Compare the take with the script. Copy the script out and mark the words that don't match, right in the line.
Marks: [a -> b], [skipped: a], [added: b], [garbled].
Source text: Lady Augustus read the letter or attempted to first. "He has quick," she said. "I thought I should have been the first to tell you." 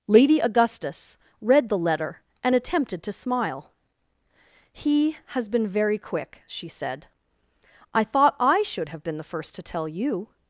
Lady Augustus read the letter [or -> and] attempted to [first. -> smile] "He has [added: been very] quick," she said. "I thought I should have been the first to tell you."